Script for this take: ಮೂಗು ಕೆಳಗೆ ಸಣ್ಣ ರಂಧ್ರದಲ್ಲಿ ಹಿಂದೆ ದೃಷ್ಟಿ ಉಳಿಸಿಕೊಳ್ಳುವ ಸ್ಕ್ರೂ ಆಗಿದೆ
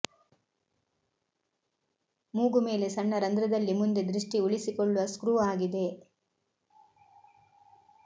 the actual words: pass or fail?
fail